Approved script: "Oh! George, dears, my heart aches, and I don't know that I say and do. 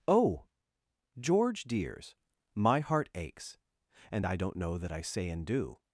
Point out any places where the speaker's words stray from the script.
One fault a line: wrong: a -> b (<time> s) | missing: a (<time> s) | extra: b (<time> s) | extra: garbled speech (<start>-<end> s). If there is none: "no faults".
no faults